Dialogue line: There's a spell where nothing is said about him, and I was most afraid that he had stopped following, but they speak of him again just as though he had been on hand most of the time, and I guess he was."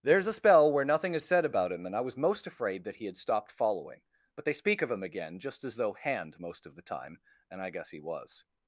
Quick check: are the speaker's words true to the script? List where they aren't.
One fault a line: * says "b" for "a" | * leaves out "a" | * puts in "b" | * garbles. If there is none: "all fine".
* leaves out "he had been on"